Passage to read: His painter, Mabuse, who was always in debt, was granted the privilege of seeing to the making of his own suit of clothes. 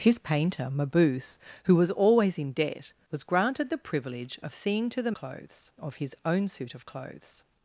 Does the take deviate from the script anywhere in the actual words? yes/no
yes